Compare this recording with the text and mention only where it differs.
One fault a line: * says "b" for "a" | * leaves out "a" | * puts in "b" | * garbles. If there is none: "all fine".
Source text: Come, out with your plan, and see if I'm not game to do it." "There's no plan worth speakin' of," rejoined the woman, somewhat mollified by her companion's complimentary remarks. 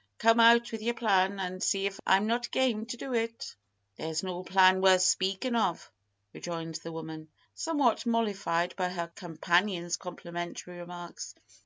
all fine